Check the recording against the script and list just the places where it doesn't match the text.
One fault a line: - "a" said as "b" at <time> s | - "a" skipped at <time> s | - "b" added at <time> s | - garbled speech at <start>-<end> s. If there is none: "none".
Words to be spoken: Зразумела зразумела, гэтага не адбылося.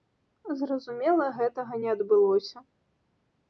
- "зразумела" skipped at 1.3 s